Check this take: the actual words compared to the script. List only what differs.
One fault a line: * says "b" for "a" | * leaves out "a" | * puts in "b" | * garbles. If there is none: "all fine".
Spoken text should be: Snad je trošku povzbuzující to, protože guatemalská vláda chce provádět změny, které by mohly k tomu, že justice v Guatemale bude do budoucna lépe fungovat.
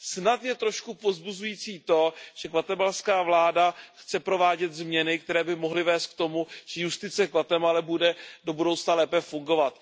* says "že" for "protože"
* puts in "vést"